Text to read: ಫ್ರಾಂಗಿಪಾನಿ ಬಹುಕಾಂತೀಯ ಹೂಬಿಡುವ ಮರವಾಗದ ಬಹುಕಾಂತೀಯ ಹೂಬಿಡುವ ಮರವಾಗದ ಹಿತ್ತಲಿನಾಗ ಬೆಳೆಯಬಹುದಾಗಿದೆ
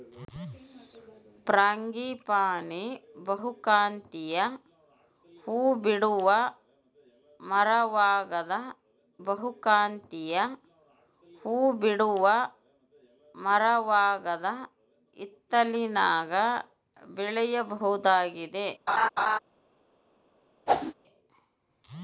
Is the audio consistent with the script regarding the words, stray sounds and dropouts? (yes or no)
no